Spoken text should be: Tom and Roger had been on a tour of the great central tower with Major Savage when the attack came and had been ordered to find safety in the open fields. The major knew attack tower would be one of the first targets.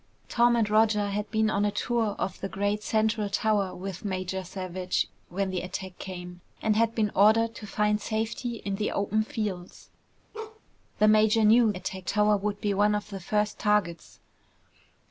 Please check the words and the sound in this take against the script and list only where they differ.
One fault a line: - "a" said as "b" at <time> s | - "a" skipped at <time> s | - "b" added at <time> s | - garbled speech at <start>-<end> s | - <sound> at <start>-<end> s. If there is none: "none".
- bark at 10.3-10.6 s